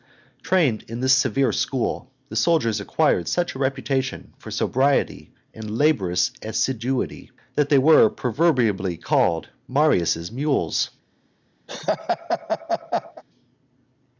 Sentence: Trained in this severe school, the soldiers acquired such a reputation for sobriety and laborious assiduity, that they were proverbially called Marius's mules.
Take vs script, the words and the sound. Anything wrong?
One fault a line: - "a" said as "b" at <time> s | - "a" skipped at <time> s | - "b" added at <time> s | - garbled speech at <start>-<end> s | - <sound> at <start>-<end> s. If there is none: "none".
- laugh at 11.7-13.2 s